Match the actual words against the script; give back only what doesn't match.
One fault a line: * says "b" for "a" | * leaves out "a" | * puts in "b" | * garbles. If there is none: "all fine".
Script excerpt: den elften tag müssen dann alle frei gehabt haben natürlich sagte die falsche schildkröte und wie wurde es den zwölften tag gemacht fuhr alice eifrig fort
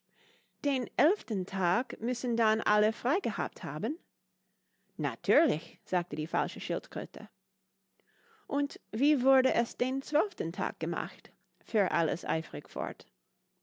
all fine